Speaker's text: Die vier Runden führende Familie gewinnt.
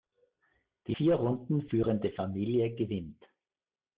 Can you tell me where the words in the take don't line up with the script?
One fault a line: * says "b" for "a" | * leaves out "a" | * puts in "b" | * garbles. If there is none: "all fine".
all fine